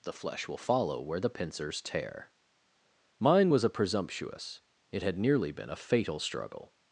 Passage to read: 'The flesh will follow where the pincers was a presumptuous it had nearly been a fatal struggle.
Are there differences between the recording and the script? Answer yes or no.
yes